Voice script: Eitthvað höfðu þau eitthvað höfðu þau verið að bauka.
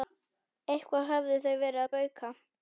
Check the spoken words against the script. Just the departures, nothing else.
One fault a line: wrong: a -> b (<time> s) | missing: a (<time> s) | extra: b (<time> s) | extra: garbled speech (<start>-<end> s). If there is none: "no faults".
missing: eitthvað höfðu þau (1.6 s)